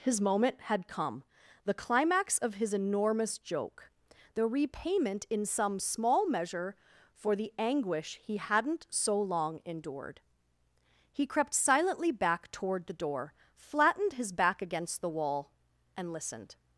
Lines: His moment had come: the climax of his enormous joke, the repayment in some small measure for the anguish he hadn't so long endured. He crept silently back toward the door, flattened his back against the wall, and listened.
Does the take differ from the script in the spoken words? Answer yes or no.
no